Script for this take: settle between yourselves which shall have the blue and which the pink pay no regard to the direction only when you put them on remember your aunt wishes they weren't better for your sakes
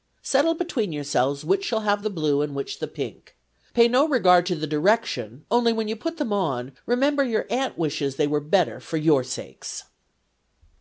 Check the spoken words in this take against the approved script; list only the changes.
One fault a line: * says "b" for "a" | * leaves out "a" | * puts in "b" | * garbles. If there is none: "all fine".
* says "were" for "weren't"